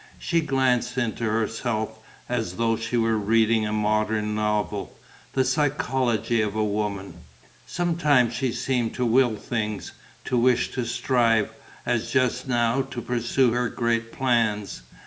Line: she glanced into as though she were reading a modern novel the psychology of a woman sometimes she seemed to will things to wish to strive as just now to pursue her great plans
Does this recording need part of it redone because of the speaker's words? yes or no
yes